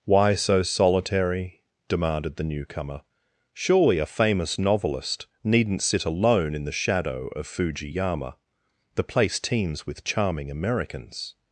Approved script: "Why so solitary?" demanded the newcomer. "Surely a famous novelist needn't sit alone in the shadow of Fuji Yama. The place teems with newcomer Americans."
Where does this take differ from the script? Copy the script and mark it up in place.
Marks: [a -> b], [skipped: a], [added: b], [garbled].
"Why so solitary?" demanded the newcomer. "Surely a famous novelist needn't sit alone in the shadow of Fuji Yama. The place teems with [newcomer -> charming] Americans."